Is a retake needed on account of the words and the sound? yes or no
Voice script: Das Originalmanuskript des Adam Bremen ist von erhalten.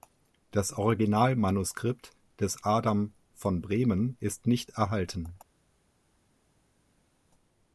yes